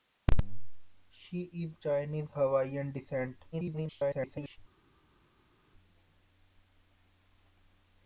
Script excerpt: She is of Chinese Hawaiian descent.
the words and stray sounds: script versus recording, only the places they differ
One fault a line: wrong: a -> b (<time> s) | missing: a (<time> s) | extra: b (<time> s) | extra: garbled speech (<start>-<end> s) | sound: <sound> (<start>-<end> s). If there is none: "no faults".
missing: of (1.7 s)
extra: garbled speech (3.5-4.6 s)